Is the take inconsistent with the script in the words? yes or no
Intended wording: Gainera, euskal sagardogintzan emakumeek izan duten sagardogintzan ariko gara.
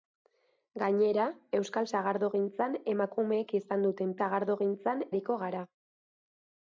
no